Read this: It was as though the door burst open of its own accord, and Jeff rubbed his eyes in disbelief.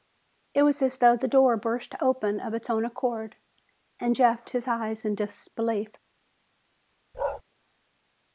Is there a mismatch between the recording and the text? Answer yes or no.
yes